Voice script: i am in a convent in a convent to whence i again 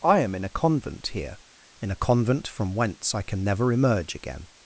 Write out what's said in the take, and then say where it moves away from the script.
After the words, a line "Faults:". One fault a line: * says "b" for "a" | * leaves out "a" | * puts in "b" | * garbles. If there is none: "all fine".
i am in a convent here in a convent from whence i can never emerge again
Faults:
* puts in "here"
* says "from" for "to"
* puts in "can never emerge"